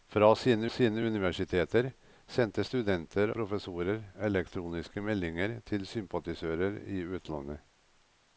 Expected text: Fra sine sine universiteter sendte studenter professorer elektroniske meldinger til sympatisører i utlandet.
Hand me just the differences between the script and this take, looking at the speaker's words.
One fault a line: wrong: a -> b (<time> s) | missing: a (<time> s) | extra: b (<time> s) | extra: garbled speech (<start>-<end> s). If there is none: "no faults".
no faults